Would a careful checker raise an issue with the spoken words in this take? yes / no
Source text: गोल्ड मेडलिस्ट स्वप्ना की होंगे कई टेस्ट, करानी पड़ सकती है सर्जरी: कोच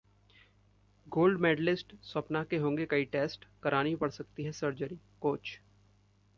yes